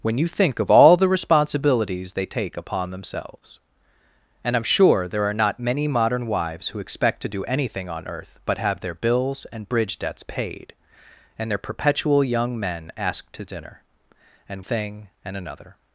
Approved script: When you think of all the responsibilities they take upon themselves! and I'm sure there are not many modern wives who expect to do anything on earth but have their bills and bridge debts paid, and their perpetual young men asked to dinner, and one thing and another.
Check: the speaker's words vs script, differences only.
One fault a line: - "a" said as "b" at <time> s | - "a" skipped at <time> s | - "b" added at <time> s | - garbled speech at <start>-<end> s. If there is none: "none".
- "one" skipped at 14.7 s